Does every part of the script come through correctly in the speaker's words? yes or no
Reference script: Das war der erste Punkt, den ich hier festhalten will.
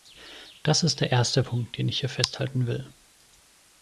no